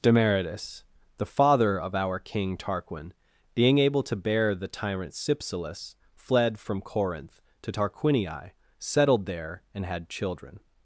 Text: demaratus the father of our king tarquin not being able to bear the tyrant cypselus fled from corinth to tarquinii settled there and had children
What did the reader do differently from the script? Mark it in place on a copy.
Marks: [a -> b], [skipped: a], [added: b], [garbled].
demaratus the father of our king tarquin [skipped: not] being able to bear the tyrant cypselus fled from corinth to tarquinii settled there and had children